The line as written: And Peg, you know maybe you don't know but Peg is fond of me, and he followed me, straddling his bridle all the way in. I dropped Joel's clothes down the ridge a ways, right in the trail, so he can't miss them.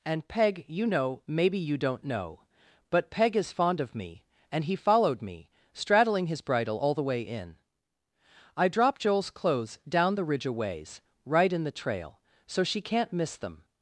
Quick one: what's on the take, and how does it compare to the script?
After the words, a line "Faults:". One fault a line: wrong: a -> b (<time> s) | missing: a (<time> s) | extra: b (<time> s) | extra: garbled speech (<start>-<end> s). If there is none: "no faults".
And Peg, you know maybe you don't know but Peg is fond of me, and he followed me, straddling his bridle all the way in. I dropped Joel's clothes down the ridge a ways, right in the trail, so she can't miss them.
Faults:
wrong: he -> she (12.6 s)